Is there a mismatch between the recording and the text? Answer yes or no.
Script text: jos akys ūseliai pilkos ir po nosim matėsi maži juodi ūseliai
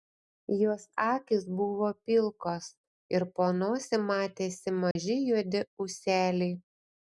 yes